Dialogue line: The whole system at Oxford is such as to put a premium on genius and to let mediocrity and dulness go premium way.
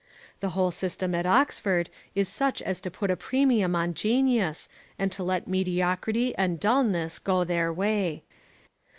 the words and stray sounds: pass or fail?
fail